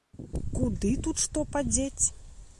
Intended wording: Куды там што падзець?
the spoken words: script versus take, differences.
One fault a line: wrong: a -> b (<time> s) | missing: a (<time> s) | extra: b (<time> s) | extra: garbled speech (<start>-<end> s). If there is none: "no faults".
wrong: там -> тут (1.1 s)